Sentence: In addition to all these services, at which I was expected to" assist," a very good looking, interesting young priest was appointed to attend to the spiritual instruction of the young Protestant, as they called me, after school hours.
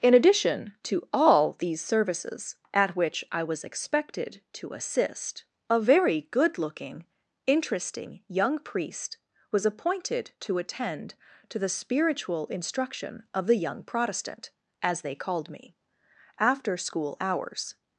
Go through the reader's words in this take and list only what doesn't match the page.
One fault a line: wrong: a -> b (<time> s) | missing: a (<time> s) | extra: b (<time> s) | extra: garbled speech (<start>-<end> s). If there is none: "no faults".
no faults